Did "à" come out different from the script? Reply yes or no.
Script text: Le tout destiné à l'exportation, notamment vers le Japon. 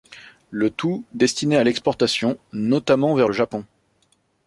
no